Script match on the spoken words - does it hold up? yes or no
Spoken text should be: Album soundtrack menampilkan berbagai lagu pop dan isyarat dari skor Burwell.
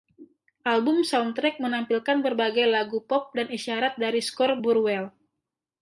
yes